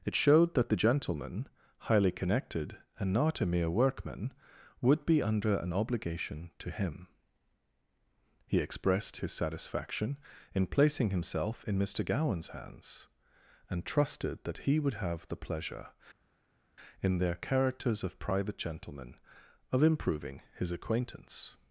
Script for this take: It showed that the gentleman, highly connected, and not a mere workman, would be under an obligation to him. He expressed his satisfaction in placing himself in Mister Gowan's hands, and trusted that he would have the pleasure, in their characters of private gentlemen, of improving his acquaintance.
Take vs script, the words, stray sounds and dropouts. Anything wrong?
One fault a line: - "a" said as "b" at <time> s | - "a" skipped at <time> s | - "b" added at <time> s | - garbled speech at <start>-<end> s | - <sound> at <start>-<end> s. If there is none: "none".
none